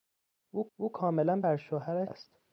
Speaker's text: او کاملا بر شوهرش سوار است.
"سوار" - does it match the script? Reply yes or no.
no